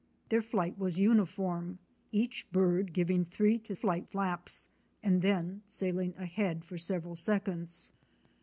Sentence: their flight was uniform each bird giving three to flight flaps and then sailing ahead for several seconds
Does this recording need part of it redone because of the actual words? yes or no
no